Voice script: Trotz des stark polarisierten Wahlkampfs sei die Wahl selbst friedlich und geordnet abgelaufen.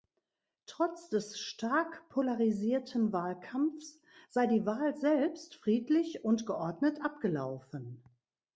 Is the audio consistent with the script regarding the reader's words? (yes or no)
yes